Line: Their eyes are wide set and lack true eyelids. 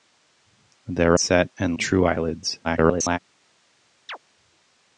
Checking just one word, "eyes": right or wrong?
wrong